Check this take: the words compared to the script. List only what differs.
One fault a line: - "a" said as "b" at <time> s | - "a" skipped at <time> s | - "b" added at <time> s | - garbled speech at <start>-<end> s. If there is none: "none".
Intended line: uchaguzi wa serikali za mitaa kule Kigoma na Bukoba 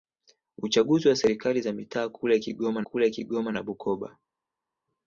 - "kule Kigoma" added at 2.8 s